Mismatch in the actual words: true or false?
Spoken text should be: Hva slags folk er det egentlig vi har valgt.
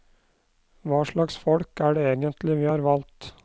false